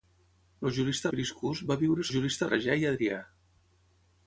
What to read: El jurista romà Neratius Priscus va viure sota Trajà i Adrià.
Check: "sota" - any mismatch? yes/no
yes